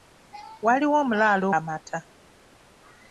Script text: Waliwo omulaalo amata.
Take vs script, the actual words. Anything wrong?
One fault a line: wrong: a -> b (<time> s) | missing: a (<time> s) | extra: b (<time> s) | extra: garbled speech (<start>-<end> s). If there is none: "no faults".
no faults